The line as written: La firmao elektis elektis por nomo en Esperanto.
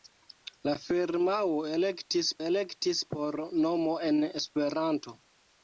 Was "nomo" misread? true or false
false